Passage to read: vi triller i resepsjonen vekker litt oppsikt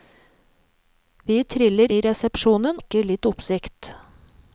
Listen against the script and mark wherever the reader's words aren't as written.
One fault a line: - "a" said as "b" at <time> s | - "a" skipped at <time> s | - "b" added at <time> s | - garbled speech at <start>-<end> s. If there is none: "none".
none